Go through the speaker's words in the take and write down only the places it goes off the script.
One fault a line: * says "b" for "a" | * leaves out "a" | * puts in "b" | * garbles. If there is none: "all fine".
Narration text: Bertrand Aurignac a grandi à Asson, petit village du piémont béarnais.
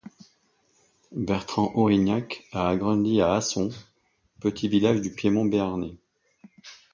all fine